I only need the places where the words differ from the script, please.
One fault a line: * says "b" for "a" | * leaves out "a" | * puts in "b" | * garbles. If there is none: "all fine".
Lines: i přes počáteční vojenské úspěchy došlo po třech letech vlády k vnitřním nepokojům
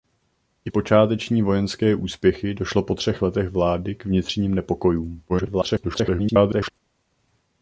* leaves out "přes"
* garbles